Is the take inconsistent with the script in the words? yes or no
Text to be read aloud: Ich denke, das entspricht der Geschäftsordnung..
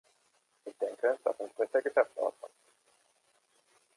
no